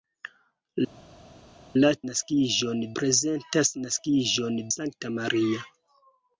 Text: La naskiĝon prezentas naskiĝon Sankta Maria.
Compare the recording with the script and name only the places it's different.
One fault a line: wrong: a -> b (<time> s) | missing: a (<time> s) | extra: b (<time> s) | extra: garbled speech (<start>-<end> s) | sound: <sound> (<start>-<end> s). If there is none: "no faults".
no faults